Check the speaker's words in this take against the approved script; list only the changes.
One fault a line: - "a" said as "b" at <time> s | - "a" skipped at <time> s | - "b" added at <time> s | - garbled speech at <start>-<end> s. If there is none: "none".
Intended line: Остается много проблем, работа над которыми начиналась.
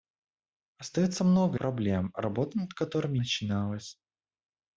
none